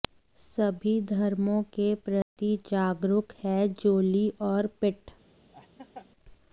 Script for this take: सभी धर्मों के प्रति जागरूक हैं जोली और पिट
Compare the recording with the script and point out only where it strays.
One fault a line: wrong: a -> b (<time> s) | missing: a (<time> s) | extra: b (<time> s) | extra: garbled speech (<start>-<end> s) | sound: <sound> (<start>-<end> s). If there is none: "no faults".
sound: dropout (2.2-2.4 s)
sound: laugh (5.5-6.1 s)